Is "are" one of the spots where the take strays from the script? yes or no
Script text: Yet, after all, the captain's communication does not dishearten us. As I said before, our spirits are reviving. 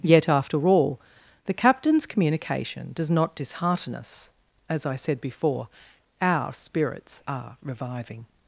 no